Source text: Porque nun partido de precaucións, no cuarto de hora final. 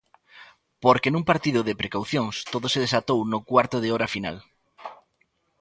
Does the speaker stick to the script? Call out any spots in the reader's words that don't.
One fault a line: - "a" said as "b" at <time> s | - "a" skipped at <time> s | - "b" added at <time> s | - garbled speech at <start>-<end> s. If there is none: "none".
- "todo se desatou" added at 2.5 s